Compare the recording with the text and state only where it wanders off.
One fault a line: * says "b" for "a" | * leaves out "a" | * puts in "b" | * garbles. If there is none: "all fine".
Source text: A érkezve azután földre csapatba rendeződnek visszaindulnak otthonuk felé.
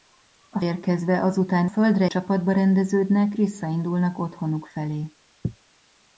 all fine